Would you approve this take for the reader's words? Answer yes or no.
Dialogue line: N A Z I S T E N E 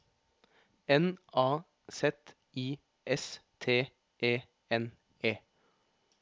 yes